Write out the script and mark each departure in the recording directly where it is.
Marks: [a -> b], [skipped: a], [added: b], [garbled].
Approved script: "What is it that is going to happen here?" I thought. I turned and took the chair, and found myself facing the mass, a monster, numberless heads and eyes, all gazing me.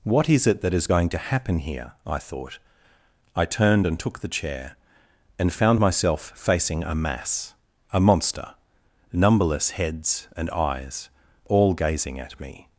"What is it that is going to happen here?" I thought. I turned and took the chair, and found myself facing [the -> a] mass, a monster, numberless heads and eyes, all gazing [added: at] me.